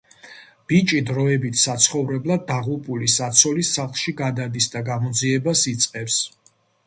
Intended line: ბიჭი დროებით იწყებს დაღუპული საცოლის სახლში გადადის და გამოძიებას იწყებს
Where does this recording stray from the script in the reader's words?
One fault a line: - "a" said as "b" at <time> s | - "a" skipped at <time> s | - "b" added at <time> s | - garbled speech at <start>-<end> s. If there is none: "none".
- "იწყებს" said as "საცხოვრებლად" at 1.6 s